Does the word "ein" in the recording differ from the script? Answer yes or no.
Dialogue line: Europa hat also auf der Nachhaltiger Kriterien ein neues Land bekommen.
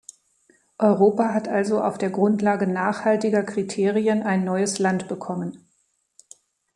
no